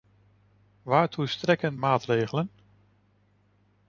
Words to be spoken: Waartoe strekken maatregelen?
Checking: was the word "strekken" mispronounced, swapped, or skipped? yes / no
no